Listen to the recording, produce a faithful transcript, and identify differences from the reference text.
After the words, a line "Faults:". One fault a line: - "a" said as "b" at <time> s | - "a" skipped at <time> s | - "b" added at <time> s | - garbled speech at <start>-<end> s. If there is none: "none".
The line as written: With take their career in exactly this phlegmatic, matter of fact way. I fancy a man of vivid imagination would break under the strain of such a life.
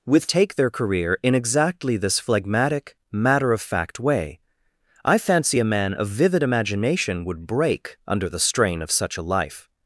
With take their career in exactly this phlegmatic, matter of fact way. I fancy a man of vivid imagination would break under the strain of such a life.
Faults:
none